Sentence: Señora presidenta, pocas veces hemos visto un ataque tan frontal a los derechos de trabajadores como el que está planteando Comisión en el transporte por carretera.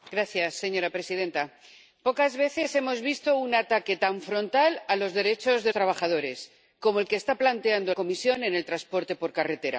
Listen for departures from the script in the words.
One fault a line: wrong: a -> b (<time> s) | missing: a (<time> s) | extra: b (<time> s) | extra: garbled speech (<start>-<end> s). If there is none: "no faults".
no faults